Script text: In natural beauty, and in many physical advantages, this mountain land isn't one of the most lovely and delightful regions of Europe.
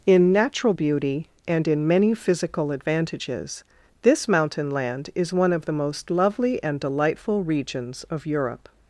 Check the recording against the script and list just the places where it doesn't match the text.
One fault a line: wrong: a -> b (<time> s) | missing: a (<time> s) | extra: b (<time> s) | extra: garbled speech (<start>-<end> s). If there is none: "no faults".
wrong: isn't -> is (5.1 s)